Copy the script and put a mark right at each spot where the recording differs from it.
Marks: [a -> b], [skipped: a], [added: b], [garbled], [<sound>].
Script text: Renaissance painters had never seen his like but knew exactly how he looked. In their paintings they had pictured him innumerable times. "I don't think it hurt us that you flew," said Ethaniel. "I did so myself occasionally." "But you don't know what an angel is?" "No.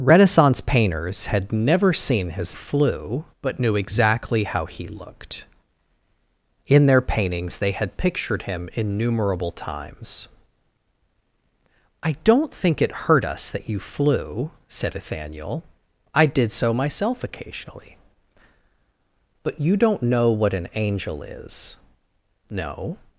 Renaissance painters had never seen his [like -> flew] but knew exactly how he looked. In their paintings they had pictured him innumerable times. "I don't think it hurt us that you flew," said Ethaniel. "I did so myself occasionally." "But you don't know what an angel is?" "No.